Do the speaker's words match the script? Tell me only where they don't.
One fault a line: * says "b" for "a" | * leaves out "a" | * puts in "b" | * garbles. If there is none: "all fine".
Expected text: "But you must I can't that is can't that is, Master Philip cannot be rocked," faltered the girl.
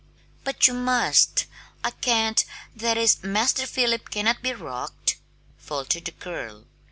* leaves out "can't that is"